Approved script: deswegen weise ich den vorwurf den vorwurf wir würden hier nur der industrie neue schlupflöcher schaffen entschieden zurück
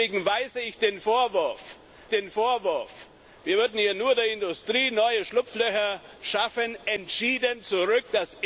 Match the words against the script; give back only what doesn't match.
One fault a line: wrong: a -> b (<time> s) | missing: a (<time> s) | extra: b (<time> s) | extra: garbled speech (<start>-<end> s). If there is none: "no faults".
no faults